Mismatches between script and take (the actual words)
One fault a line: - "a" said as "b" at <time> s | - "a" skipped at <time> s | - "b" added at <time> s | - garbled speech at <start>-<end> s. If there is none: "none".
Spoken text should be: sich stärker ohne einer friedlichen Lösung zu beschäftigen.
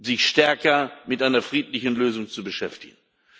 - "ohne" said as "mit" at 1.1 s